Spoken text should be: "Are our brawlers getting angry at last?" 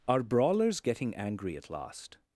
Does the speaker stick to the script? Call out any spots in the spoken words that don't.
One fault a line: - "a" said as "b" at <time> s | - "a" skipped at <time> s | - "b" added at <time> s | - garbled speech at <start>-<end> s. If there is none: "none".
- "our" skipped at 0.2 s